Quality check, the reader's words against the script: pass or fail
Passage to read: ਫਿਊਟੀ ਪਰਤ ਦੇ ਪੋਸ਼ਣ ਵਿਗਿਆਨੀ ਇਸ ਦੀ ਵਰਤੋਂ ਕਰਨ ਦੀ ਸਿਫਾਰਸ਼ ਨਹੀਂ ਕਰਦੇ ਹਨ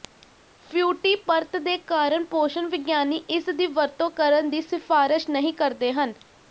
fail